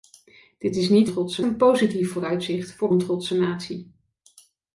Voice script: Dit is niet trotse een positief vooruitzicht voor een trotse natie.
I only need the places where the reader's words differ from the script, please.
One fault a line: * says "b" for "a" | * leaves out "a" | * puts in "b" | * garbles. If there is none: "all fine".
all fine